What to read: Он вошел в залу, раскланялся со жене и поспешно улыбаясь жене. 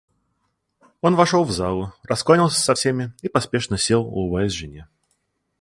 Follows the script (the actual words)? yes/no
no